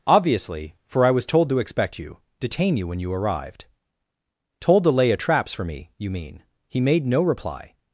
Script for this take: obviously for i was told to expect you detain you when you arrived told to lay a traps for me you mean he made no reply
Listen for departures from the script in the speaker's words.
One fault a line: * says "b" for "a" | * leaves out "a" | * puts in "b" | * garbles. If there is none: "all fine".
all fine